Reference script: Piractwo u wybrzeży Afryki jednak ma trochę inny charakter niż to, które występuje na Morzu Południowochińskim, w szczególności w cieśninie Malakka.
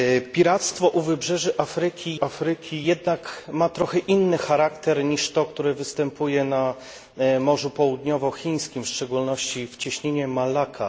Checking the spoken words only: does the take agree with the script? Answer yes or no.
no